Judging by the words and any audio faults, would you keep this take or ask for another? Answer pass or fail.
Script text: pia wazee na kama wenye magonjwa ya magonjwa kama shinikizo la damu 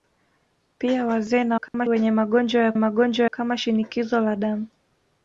fail